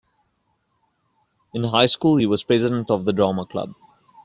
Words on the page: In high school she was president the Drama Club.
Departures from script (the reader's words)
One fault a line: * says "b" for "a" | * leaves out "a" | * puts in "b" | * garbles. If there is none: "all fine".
* says "he" for "she"
* puts in "of"